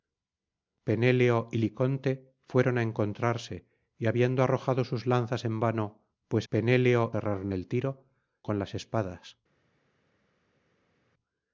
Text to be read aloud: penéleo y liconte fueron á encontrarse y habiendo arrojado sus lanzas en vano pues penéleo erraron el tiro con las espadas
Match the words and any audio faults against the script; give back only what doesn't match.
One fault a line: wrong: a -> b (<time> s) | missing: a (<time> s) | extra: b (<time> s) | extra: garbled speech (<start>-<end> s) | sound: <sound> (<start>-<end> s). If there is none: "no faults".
no faults